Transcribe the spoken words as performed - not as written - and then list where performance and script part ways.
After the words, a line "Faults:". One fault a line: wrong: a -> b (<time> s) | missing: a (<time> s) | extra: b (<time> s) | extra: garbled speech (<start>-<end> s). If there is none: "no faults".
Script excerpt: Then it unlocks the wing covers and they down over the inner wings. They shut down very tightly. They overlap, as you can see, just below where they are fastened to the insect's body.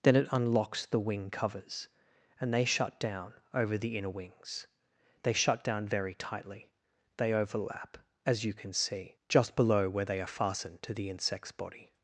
Then it unlocks the wing covers and they shut down over the inner wings. They shut down very tightly. They overlap, as you can see, just below where they are fastened to the insect's body.
Faults:
extra: shut (2.6 s)